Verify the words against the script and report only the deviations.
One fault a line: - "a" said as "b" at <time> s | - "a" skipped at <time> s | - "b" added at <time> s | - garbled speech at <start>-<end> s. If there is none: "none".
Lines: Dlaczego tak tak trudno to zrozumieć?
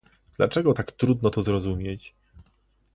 - "tak" skipped at 0.9 s